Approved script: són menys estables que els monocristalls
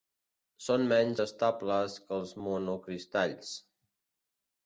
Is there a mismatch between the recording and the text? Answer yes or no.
no